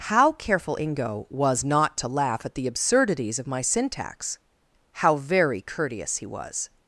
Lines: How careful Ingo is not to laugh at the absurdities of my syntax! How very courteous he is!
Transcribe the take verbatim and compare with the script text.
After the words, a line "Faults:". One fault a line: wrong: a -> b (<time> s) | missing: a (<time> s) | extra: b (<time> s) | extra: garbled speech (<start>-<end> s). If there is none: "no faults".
How careful Ingo was not to laugh at the absurdities of my syntax! How very courteous he was!
Faults:
wrong: is -> was (1.3 s)
wrong: is -> was (6.2 s)